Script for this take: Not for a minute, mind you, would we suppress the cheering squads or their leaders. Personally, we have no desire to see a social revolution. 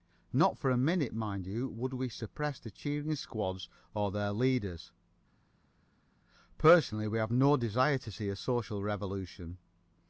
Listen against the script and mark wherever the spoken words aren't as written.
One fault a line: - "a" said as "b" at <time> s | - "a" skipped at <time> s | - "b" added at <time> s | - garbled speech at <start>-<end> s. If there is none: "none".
none